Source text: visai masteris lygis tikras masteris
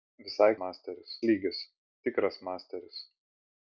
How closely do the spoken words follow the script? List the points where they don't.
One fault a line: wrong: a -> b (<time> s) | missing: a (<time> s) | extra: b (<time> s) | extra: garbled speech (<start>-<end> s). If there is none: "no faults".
no faults